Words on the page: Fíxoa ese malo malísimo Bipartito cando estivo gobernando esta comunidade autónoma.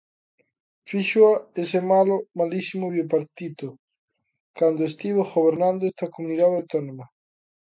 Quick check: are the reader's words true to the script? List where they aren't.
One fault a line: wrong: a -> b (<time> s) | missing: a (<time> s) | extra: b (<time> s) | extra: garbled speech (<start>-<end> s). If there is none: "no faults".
no faults